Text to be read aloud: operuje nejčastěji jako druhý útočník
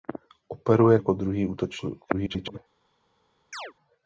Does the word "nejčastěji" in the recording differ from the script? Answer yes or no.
yes